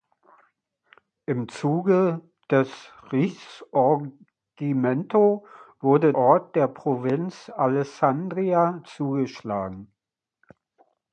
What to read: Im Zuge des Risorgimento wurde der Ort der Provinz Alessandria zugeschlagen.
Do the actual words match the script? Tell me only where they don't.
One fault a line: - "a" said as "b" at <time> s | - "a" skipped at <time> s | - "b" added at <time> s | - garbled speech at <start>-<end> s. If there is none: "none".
- "der" skipped at 6.2 s